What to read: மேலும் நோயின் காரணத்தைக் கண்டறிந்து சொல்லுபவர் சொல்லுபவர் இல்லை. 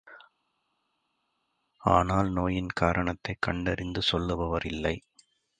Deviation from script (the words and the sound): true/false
true